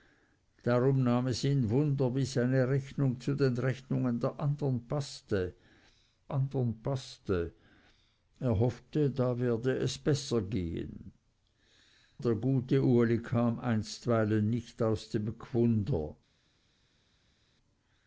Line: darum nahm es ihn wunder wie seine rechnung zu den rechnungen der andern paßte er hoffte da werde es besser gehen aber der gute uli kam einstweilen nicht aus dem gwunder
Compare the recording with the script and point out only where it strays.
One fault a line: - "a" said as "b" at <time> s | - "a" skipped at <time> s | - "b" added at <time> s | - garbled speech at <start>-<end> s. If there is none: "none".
- "andern paßte" added at 6.3 s
- "aber" skipped at 11.1 s